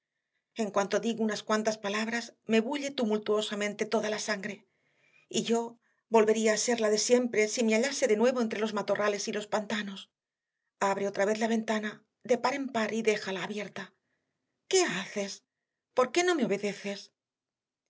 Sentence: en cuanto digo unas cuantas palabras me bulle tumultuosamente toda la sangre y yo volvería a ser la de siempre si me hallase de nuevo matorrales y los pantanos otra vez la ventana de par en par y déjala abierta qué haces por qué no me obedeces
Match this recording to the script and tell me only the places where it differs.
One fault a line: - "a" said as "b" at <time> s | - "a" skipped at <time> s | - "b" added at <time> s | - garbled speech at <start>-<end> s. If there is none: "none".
- "entre los" added at 8.4 s
- "abre" added at 10.8 s